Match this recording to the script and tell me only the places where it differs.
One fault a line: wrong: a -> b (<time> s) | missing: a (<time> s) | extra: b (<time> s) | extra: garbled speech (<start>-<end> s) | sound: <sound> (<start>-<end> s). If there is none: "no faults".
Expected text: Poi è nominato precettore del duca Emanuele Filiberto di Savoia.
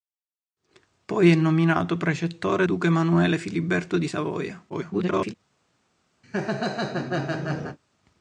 missing: del (2.7 s)
extra: garbled speech (4.7-5.3 s)
sound: laugh (6.2-7.8 s)